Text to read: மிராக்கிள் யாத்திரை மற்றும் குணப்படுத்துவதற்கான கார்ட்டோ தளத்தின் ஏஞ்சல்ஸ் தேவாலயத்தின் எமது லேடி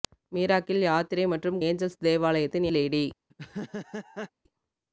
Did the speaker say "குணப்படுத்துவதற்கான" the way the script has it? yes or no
no